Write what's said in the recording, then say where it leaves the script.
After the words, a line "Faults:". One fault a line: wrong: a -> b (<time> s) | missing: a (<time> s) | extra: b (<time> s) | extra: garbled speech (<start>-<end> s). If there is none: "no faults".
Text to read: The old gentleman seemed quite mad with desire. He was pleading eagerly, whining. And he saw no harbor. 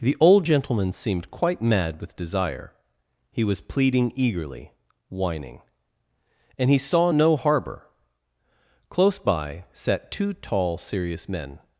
The old gentleman seemed quite mad with desire. He was pleading eagerly, whining. And he saw no harbor. Close by sat two tall serious men
Faults:
extra: Close by sat two tall serious men (8.9 s)